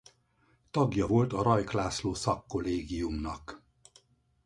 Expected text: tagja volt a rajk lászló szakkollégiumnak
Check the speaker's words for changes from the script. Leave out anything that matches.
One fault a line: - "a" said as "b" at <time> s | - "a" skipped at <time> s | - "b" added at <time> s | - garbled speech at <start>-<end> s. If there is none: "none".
none